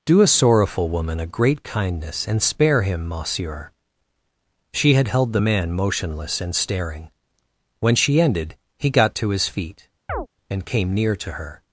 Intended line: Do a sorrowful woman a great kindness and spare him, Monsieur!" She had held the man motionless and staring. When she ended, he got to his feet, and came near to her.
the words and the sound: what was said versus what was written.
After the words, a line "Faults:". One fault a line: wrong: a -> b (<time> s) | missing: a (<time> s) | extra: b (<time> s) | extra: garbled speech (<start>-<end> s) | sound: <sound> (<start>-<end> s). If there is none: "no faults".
Do a sorrowful woman a great kindness and spare him, Monsieur!" She had held the man motionless and staring. When she ended, he got to his feet, and came near to her.
Faults:
sound: chirp (10.1-10.3 s)